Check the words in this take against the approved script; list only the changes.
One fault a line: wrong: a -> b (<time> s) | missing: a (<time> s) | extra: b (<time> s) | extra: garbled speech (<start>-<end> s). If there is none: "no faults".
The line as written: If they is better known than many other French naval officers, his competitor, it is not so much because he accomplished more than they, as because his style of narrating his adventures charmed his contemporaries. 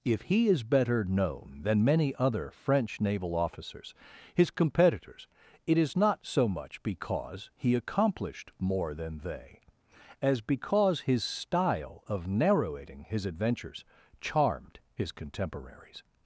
wrong: they -> he (0.2 s)
wrong: competitor -> competitors (4.5 s)